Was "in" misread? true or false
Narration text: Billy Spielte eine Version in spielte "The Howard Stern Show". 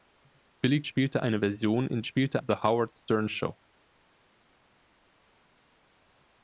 false